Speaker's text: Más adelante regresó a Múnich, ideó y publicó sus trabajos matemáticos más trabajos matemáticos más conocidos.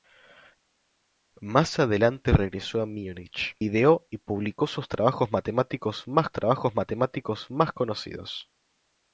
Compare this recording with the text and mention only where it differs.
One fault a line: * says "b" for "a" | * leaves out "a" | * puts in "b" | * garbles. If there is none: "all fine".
all fine